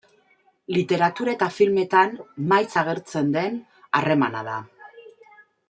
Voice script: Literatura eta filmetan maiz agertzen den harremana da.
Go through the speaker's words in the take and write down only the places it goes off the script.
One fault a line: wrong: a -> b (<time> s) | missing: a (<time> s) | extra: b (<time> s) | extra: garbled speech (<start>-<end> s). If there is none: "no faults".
no faults